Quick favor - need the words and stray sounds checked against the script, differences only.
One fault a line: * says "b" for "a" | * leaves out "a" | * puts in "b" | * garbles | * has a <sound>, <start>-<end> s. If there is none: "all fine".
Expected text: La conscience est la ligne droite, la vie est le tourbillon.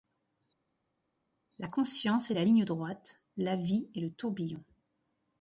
all fine